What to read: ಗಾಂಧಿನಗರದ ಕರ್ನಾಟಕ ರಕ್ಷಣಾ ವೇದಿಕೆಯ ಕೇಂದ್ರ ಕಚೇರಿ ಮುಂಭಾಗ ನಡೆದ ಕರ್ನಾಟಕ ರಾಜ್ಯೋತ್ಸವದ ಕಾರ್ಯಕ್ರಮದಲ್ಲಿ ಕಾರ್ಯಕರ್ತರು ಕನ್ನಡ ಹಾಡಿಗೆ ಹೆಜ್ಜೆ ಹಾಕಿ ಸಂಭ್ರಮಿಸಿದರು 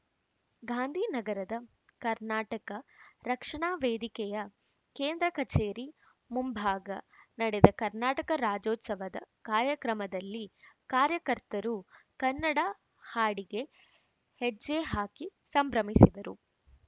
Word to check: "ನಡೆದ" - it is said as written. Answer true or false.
true